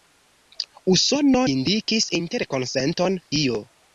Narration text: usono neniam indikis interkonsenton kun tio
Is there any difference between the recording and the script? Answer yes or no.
yes